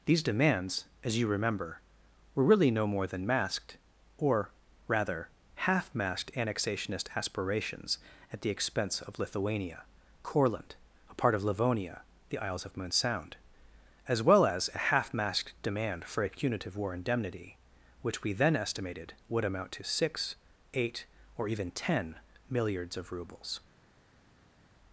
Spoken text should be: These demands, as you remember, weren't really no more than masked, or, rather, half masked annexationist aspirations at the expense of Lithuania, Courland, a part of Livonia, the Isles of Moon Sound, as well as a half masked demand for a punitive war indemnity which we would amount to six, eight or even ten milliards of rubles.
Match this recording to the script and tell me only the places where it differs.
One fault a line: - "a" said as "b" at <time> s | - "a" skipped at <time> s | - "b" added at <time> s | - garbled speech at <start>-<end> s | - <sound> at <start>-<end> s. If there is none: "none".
- "weren't" said as "were" at 2.3 s
- "then estimated" added at 18.3 s